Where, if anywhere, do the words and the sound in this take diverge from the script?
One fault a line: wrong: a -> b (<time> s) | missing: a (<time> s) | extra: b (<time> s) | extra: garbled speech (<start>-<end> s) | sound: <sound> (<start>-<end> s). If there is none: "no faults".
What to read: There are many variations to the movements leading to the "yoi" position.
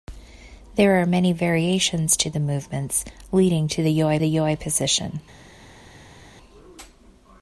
extra: the yoi (4.2 s)